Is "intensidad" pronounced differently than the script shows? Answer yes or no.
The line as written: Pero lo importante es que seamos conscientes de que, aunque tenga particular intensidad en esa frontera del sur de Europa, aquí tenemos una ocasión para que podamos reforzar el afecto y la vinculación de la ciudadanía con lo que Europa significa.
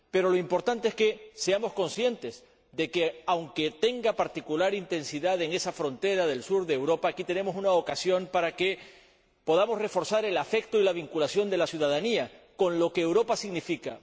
no